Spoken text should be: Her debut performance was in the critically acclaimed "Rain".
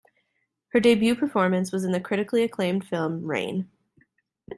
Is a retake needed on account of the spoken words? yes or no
yes